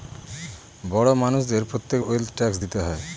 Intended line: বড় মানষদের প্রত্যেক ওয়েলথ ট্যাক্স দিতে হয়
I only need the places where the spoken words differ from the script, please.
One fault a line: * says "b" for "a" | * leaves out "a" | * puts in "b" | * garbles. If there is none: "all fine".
all fine